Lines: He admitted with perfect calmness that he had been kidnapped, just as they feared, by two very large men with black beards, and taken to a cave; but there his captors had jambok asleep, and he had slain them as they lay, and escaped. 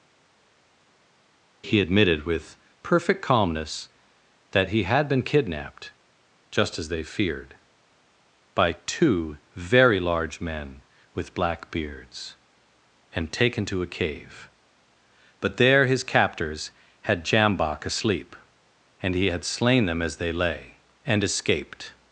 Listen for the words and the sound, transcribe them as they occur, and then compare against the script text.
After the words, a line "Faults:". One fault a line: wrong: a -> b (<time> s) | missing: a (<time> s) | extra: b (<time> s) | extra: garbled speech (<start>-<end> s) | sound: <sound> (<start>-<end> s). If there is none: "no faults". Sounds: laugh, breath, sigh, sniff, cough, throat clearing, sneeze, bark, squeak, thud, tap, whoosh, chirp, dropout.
He admitted with perfect calmness that he had been kidnapped, just as they feared, by two very large men with black beards, and taken to a cave; but there his captors had jambok asleep, and he had slain them as they lay, and escaped.
Faults:
no faults